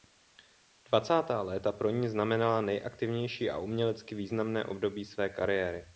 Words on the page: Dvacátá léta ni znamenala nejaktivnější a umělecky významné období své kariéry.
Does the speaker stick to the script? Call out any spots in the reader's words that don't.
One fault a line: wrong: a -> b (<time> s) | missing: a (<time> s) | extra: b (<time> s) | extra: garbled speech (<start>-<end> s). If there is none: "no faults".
extra: pro (1.7 s)